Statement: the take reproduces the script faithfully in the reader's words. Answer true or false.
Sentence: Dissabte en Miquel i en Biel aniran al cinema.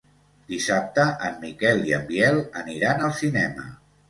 true